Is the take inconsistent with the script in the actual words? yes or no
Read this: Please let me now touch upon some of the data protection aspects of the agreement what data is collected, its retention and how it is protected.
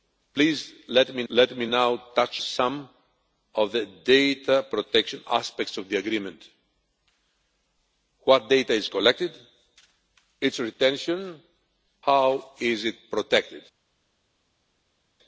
yes